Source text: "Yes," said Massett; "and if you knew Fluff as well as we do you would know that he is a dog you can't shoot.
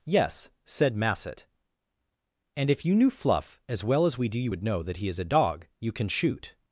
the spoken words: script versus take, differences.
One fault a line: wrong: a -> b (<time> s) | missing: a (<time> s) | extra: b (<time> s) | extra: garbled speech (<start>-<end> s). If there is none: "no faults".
wrong: can't -> can (5.9 s)